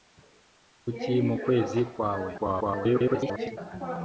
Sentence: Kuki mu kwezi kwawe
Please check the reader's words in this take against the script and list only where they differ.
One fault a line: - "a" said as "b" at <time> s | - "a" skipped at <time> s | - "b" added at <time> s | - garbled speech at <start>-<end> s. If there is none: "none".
- garbled speech at 2.4-3.6 s